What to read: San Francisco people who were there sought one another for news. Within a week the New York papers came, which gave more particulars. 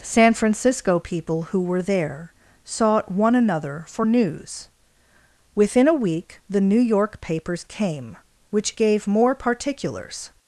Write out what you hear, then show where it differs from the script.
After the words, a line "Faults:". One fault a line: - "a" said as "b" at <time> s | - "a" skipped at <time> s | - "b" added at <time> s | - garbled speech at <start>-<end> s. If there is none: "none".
San Francisco people who were there sought one another for news. Within a week the New York papers came, which gave more particulars.
Faults:
none